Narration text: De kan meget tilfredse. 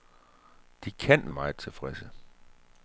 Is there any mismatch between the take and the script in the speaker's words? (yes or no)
no